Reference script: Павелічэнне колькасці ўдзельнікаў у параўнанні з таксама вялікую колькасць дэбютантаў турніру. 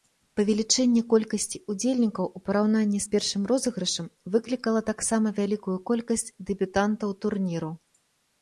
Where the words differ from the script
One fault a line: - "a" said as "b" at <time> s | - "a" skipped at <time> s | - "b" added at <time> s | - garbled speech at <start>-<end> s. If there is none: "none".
- "першым розыгрышам выклікала" added at 3.1 s